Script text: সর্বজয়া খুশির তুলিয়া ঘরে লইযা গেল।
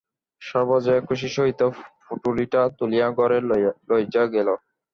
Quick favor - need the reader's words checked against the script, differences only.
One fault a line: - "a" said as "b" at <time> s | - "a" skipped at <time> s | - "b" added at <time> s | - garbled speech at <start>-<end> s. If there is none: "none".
- "সহিত পুঁটুলিটা" added at 1.4 s